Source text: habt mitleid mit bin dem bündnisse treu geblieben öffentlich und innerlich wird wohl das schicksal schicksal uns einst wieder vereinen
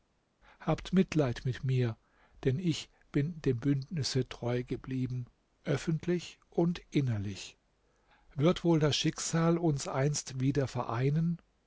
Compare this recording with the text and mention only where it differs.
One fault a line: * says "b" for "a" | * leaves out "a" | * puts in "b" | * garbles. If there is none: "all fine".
* puts in "mir denn ich"
* leaves out "schicksal"